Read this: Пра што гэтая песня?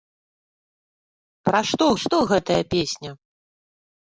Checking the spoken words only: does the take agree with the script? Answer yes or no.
no